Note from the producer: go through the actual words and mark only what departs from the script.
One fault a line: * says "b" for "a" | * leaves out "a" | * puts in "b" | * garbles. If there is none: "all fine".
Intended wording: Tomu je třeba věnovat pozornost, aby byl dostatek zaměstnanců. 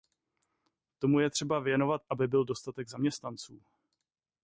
* leaves out "pozornost"